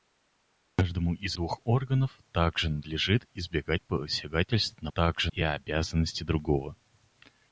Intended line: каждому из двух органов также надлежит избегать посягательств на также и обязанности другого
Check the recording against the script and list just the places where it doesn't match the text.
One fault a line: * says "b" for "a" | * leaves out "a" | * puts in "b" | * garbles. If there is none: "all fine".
all fine